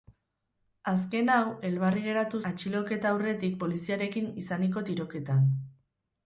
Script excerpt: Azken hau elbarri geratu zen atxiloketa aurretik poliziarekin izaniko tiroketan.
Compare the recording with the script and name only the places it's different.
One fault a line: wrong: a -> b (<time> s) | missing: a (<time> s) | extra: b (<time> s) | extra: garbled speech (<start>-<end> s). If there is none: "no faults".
missing: zen (2.4 s)